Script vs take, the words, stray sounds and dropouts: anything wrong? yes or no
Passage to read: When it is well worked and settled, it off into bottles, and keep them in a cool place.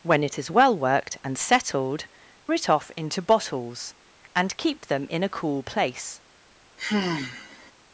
yes